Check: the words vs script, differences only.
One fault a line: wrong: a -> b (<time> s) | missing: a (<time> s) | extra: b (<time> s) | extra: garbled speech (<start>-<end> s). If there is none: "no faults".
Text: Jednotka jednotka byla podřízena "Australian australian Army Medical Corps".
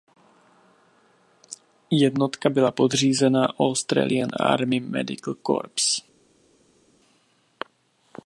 missing: jednotka (2.5 s)
missing: australian (4.3 s)